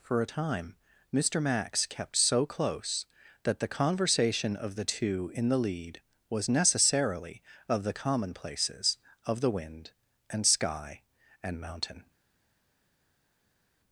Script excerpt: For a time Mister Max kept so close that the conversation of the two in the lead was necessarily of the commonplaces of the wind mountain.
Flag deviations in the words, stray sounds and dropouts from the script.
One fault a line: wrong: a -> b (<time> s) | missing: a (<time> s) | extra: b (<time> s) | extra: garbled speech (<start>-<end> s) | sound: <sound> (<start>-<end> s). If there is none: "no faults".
extra: and sky and (10.3 s)